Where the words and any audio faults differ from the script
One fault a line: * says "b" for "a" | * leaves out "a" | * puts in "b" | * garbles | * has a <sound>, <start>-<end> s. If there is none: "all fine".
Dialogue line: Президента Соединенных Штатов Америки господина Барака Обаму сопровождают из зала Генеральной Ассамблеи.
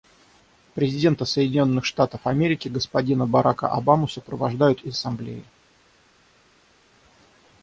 * leaves out "зала Генеральной"